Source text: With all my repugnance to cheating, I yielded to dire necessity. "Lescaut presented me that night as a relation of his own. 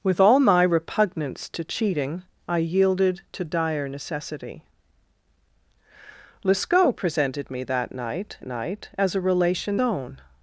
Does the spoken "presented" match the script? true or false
true